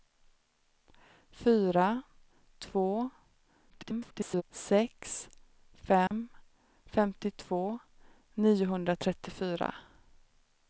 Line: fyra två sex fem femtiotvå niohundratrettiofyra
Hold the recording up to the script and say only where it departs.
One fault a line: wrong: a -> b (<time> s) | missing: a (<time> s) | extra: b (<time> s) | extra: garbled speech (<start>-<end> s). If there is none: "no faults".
extra: garbled speech (3.7-4.4 s)